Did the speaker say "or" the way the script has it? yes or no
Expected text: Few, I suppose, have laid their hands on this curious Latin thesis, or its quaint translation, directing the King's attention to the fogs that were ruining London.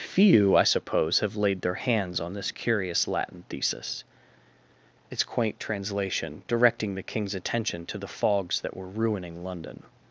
no